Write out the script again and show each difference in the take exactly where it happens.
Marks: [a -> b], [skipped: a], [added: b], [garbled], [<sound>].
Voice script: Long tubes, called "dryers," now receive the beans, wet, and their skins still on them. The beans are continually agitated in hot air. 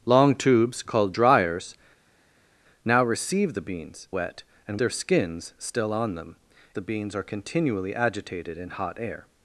Long tubes, called "dryers," now receive the beans, wet, and their skins still on them. The beans are continually agitated in hot air.